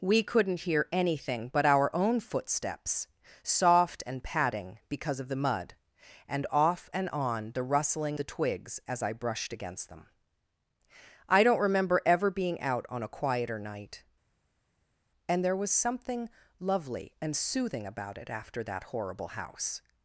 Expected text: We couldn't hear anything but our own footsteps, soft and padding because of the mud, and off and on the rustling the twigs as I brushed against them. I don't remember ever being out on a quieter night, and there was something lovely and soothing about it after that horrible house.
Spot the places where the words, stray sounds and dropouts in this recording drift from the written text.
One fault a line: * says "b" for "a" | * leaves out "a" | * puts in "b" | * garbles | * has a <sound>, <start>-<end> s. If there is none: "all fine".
all fine